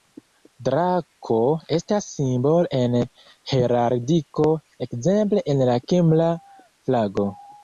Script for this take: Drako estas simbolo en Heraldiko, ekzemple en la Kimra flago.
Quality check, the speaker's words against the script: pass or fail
pass